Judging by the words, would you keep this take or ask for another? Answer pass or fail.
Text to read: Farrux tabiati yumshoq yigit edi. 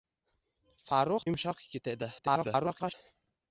fail